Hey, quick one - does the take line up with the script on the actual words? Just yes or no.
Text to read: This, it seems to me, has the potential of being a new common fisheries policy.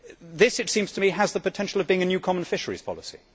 yes